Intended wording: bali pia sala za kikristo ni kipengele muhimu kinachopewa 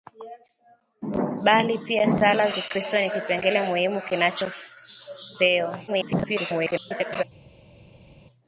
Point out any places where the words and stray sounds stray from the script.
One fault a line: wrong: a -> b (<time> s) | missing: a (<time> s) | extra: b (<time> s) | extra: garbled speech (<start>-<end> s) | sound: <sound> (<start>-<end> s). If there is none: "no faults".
missing: za (2.5 s)
extra: garbled speech (5.9-7.2 s)